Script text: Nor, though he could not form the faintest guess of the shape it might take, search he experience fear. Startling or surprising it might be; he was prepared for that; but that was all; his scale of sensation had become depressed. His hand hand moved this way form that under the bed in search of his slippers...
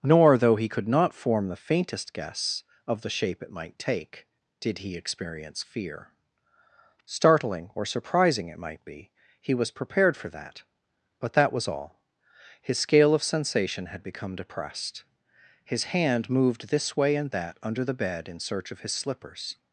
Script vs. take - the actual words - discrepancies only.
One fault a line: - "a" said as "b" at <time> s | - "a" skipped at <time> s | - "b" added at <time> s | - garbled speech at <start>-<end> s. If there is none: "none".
- "search" said as "did" at 4.6 s
- "hand" skipped at 16.3 s
- "form" said as "and" at 17.2 s